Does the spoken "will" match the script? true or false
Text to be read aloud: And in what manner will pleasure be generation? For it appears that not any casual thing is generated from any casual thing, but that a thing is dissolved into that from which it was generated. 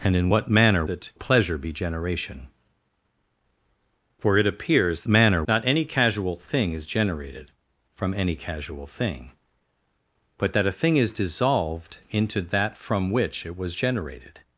false